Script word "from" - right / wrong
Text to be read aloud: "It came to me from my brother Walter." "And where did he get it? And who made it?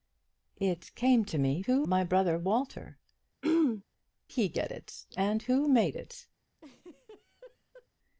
wrong